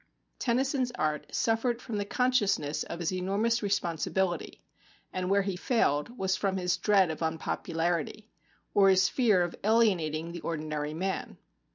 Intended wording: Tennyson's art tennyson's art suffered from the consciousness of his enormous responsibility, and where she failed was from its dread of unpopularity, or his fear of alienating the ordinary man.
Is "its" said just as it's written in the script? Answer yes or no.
no